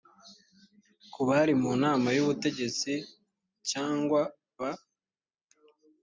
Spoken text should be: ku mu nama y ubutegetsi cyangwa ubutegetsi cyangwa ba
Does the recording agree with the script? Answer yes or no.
no